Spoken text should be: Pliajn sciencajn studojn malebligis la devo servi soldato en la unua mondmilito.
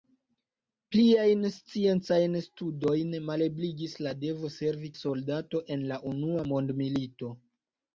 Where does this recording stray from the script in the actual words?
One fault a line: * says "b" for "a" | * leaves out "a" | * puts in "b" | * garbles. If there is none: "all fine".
all fine